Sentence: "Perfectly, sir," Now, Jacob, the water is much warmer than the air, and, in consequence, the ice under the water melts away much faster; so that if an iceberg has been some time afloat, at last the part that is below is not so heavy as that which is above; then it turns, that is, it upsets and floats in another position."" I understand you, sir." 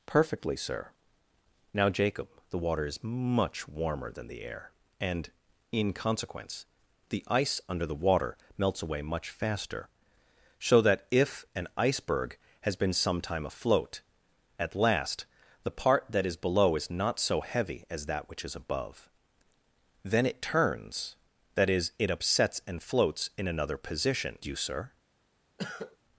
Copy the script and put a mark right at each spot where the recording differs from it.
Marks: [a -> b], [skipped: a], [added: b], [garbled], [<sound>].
"Perfectly, sir," Now, Jacob, the water is much warmer than the air, and, in consequence, the ice under the water melts away much faster; so that if an iceberg has been some time afloat, at last the part that is below is not so heavy as that which is above; then it turns, that is, it upsets and floats in another position."" [skipped: I understand] you, sir." [cough]